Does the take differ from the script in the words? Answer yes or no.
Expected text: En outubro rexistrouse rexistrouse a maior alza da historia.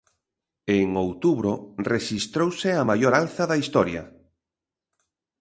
yes